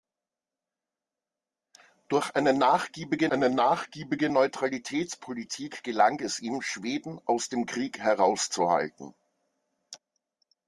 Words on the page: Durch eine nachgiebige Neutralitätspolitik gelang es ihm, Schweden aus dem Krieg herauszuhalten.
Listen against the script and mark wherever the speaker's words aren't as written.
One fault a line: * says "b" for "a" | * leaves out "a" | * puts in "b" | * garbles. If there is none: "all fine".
* puts in "eine nachgiebige"